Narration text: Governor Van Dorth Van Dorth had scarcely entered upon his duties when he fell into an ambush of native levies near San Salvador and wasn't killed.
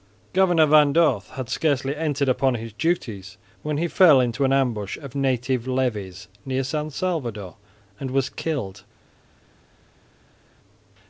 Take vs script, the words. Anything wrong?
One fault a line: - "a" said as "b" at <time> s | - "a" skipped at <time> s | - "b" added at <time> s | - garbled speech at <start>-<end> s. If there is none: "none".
- "Van Dorth" skipped at 1.3 s
- "wasn't" said as "was" at 8.1 s